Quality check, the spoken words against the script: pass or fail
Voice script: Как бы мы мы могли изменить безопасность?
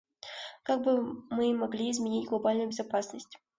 fail